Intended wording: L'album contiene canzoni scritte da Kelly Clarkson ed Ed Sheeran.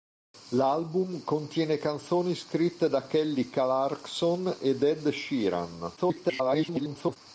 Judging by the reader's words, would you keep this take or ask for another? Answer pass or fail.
fail